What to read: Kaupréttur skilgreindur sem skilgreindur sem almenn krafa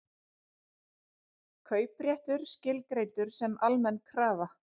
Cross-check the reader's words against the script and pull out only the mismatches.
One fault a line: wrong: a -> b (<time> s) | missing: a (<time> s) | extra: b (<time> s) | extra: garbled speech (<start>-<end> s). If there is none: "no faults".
missing: skilgreindur sem (3.5 s)